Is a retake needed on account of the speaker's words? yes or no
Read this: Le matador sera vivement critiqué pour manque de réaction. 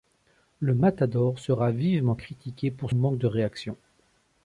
no